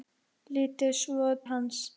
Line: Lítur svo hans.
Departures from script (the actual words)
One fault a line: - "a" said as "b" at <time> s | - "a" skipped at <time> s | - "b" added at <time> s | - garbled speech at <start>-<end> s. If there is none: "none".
none